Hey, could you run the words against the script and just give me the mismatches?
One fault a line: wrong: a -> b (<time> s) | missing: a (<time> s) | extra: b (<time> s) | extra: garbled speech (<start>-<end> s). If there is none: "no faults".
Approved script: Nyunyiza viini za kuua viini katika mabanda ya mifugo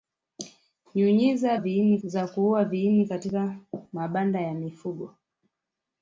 no faults